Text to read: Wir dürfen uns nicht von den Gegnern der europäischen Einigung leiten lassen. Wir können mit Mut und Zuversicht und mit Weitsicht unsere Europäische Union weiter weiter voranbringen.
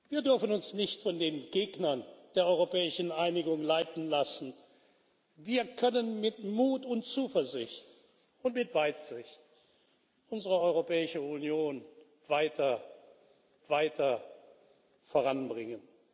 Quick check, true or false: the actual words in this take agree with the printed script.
true